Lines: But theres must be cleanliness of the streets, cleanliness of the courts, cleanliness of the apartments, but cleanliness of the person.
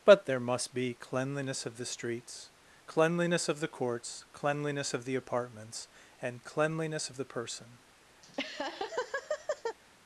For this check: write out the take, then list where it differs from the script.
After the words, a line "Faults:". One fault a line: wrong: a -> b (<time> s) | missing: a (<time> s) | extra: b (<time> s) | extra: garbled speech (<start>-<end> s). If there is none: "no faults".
But there must be cleanliness of the streets, cleanliness of the courts, cleanliness of the apartments, and cleanliness of the person.
Faults:
wrong: theres -> there (0.2 s)
wrong: but -> and (6.2 s)